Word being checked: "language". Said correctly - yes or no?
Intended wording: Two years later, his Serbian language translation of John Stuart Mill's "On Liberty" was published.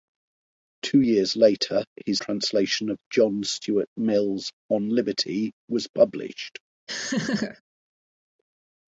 no